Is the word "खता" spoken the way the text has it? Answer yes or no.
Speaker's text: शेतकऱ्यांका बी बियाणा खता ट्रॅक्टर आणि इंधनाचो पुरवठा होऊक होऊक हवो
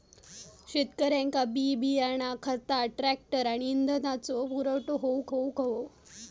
yes